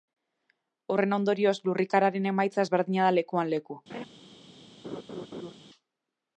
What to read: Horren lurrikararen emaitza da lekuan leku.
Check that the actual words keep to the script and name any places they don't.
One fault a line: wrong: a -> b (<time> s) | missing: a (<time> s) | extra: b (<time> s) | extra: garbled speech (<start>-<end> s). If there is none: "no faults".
extra: ondorioz (1.2 s)
extra: ezberdina (2.6 s)